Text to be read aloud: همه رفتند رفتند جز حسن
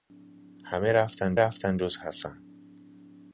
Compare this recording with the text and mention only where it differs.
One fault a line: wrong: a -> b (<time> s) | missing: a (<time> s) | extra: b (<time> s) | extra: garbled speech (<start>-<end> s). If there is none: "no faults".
no faults